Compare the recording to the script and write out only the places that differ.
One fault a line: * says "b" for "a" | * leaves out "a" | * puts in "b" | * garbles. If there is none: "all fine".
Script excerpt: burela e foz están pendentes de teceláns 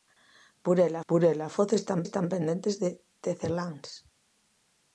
* puts in "burela"
* puts in "están"